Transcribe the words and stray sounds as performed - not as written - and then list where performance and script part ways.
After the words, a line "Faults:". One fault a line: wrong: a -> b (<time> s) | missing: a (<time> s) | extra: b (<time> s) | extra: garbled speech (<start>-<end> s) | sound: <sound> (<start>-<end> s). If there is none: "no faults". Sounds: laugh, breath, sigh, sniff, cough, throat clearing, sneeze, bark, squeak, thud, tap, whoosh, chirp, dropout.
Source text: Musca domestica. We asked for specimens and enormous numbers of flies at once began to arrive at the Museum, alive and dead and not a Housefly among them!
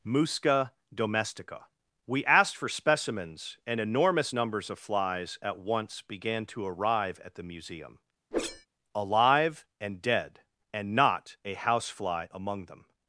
Musca domestica. We asked for specimens and enormous numbers of flies at once began to arrive at the Museum, alive and dead and not a Housefly among them!
Faults:
sound: whoosh (8.3-8.7 s)